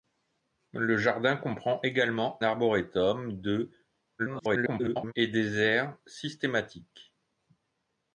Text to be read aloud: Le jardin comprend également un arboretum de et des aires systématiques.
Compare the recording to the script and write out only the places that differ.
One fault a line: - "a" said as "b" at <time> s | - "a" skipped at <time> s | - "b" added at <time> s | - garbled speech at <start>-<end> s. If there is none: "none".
- "un" skipped at 2.4 s
- garbled speech at 4.2-5.1 s